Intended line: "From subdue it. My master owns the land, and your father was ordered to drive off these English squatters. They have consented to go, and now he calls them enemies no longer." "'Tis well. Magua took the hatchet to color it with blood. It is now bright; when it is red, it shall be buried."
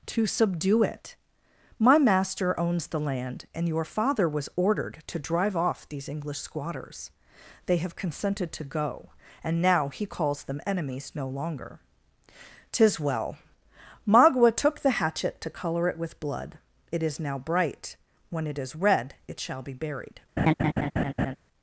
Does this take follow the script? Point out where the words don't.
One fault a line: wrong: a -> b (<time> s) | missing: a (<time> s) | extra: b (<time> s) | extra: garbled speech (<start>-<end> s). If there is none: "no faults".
wrong: From -> To (0.1 s)